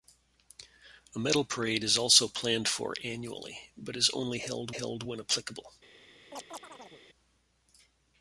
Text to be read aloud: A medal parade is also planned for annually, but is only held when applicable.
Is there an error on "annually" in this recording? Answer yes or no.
no